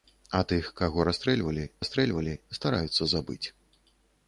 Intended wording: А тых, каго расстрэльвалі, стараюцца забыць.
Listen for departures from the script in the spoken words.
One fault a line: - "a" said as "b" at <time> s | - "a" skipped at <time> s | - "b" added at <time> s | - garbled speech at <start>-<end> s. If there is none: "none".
- "расстрэльвалі" added at 1.8 s